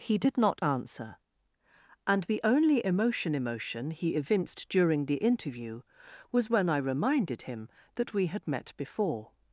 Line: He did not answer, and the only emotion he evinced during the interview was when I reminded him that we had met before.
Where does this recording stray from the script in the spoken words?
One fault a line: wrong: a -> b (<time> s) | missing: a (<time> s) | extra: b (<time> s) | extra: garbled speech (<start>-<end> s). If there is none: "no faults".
extra: emotion (3.3 s)